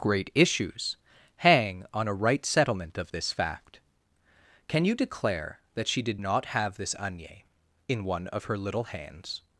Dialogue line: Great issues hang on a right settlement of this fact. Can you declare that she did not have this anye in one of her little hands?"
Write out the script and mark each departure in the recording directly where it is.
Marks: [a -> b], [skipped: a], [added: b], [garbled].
Great issues hang on a right settlement of this fact. Can you declare that she did not have this anye in one of her little hands?"